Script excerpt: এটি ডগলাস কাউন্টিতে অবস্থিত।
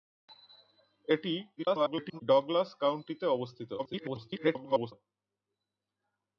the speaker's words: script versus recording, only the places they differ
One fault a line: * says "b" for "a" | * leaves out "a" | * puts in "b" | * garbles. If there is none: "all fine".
* garbles
* garbles